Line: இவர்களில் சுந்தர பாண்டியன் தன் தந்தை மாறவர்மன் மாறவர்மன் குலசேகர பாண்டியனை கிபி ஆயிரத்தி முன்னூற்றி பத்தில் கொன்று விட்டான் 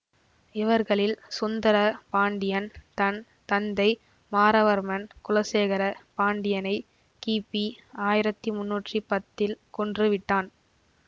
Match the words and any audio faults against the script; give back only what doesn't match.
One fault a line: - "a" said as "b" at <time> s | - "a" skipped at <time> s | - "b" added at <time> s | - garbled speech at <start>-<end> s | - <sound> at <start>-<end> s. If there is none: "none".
- "மாறவர்மன்" skipped at 5.0 s